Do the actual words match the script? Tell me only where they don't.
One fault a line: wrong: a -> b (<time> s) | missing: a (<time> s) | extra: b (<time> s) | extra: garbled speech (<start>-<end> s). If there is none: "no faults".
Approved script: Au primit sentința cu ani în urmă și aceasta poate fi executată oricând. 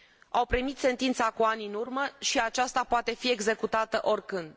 no faults